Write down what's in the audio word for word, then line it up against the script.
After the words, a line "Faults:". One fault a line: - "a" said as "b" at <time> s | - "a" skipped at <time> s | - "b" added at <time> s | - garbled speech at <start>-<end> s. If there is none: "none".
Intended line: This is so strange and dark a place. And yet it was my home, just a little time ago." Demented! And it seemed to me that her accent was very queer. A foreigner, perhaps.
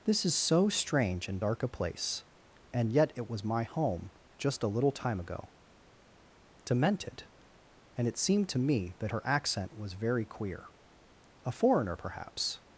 This is so strange and dark a place. And yet it was my home, just a little time ago." Demented! And it seemed to me that her accent was very queer. A foreigner, perhaps.
Faults:
none